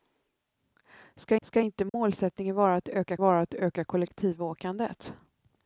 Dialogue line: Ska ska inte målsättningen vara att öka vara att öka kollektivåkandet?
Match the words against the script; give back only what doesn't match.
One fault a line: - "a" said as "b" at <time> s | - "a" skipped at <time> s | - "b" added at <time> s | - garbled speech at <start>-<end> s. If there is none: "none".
none